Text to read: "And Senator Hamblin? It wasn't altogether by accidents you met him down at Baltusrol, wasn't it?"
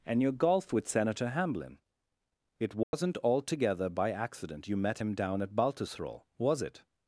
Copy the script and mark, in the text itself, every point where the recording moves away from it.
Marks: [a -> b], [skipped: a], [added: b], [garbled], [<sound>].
"And [added: your golf with] Senator Hamblin? It wasn't [dropout] altogether by [accidents -> accident] you met him down at Baltusrol, [wasn't -> was] it?"